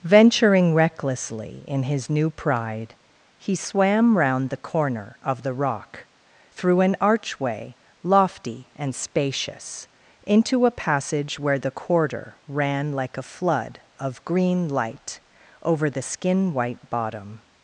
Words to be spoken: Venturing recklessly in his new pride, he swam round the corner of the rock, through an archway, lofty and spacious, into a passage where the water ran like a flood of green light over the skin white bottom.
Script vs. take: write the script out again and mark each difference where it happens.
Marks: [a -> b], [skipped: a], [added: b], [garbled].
Venturing recklessly in his new pride, he swam round the corner of the rock, through an archway, lofty and spacious, into a passage where the [water -> quarter] ran like a flood of green light over the skin white bottom.